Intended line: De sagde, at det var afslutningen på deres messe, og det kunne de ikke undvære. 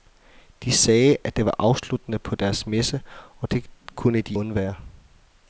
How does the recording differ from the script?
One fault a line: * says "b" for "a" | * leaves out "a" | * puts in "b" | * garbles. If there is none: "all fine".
* leaves out "ikke"